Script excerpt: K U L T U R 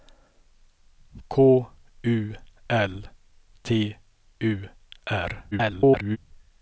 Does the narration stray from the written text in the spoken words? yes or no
yes